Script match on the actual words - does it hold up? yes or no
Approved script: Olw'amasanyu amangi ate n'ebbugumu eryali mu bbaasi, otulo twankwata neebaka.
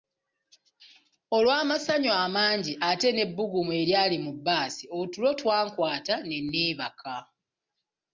no